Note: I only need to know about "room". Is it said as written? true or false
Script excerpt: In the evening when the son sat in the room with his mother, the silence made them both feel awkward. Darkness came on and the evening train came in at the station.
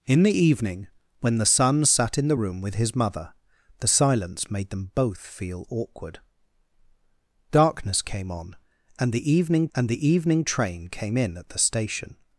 true